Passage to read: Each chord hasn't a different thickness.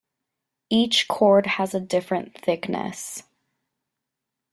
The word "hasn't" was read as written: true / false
false